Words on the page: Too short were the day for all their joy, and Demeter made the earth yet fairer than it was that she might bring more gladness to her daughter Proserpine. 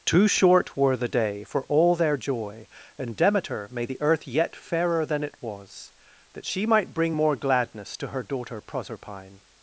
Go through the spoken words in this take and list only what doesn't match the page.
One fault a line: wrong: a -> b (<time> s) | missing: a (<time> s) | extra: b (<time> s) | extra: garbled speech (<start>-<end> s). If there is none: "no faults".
no faults